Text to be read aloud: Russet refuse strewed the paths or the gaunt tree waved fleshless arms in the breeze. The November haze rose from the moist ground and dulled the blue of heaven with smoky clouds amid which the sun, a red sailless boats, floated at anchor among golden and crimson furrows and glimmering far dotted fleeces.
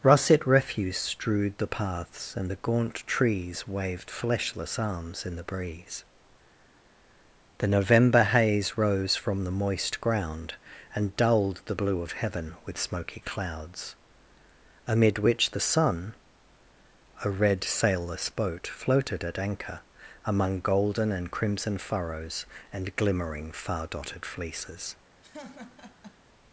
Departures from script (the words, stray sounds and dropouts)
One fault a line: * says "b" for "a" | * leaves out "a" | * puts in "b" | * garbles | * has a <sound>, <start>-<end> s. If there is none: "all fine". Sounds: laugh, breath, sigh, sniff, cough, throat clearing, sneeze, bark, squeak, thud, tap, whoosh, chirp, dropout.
* says "and" for "or"
* says "trees" for "tree"
* says "boat" for "boats"
* has a laugh, 25.2-26.2 s